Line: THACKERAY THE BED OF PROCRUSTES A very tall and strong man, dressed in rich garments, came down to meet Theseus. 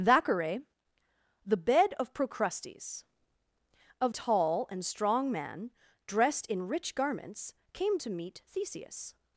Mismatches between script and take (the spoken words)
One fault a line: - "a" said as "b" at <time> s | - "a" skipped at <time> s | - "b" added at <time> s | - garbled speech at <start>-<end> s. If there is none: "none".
- "very" skipped at 4.1 s
- "down" skipped at 8.0 s